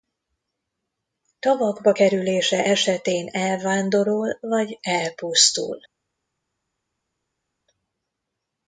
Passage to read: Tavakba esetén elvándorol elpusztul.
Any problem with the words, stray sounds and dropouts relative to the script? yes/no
yes